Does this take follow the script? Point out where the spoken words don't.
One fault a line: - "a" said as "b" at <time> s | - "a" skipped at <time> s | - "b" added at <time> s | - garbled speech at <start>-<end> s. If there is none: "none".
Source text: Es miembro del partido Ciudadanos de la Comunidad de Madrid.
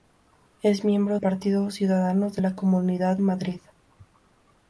- "del" skipped at 1.2 s
- "de" skipped at 3.2 s